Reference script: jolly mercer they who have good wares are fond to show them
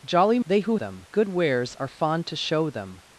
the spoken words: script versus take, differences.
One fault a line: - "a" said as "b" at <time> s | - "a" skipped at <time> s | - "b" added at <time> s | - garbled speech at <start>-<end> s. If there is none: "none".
- "mercer" skipped at 0.4 s
- "have" said as "them" at 0.8 s